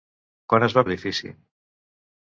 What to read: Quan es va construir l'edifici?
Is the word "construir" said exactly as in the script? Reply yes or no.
no